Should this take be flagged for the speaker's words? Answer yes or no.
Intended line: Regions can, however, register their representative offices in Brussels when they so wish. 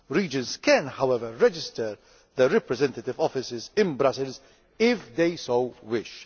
yes